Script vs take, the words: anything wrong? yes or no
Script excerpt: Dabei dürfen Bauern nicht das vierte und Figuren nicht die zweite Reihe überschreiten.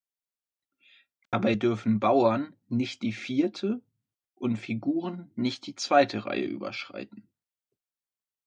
yes